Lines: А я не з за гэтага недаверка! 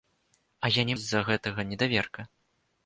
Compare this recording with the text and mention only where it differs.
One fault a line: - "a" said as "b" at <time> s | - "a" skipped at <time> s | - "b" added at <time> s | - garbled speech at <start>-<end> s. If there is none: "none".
none